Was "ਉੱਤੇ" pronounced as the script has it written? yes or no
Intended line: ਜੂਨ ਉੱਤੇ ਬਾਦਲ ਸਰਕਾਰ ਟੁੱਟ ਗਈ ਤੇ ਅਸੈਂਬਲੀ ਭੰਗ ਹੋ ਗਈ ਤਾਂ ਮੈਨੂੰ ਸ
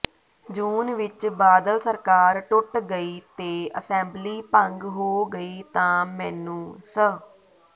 no